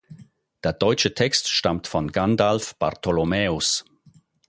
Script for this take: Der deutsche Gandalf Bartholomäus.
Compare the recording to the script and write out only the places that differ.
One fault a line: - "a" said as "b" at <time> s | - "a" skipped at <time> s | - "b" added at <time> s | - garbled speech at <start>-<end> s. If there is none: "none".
- "Text stammt von" added at 1.1 s